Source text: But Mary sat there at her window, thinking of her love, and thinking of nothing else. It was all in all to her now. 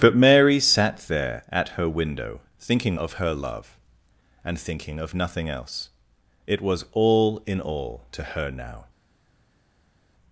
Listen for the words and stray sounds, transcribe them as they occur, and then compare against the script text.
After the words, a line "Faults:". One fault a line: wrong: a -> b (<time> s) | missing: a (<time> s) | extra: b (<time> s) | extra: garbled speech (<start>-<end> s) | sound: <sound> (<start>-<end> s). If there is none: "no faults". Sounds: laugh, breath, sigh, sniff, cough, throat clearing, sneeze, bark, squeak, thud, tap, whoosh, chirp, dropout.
But Mary sat there at her window, thinking of her love, and thinking of nothing else. It was all in all to her now.
Faults:
no faults